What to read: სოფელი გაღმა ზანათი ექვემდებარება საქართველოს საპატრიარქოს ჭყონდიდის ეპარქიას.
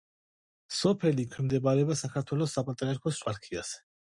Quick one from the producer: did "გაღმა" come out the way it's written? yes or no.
no